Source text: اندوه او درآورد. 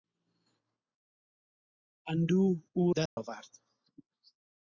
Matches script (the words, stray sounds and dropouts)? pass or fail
fail